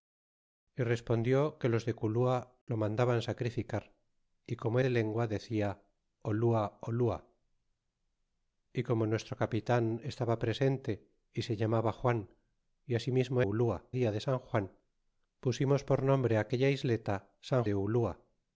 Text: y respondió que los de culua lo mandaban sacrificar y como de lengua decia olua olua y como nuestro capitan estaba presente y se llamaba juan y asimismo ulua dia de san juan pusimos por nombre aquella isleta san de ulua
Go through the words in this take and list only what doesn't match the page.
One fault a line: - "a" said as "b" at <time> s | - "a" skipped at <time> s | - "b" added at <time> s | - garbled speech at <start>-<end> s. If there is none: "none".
none